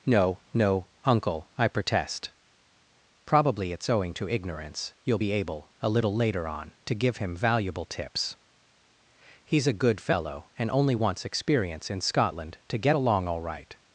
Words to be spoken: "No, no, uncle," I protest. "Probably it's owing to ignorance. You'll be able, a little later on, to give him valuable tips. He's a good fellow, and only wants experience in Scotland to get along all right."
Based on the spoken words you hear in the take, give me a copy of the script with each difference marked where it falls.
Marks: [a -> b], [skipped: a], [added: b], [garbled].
"No, no, uncle," I protest. "Probably it's owing to ignorance. You'll be able, a little later on, to give him valuable tips. He's a good fellow, and only wants experience in Scotland to get along all right."